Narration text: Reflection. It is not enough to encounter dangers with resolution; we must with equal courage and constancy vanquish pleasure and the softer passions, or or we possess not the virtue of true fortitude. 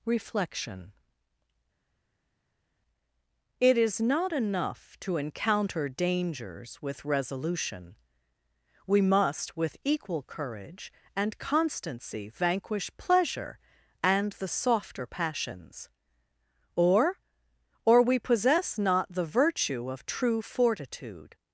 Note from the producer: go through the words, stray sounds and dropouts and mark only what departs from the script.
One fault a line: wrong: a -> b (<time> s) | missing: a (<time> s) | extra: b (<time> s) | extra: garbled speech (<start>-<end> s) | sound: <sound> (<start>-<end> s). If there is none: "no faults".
no faults